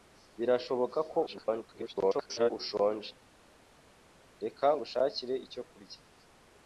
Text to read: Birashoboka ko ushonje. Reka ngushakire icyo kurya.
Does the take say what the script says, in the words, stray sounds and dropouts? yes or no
no